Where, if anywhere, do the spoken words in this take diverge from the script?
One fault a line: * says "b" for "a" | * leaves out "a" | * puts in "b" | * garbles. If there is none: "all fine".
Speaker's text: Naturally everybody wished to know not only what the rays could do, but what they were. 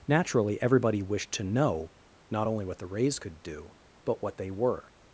all fine